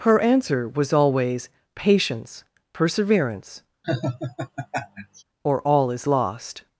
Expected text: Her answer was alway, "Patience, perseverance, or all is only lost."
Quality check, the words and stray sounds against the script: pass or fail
fail